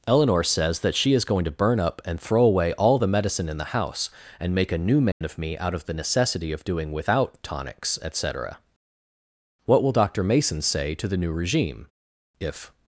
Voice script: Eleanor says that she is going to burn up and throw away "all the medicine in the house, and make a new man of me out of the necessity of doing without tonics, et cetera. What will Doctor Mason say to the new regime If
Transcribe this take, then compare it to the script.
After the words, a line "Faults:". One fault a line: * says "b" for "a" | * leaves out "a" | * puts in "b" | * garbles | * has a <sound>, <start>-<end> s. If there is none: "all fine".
Eleanor says that she is going to burn up and throw away "all the medicine in the house, and make a new man of me out of the necessity of doing without tonics, et cetera. What will Doctor Mason say to the new regime If
Faults:
* has a dropout, 5.1-5.2 s